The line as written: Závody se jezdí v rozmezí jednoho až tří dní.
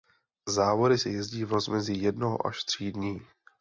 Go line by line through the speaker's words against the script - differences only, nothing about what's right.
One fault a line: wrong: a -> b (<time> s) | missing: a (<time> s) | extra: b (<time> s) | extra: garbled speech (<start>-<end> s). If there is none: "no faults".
no faults